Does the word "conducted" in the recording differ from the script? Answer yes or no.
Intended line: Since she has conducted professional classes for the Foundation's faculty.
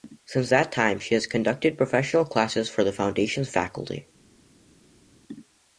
no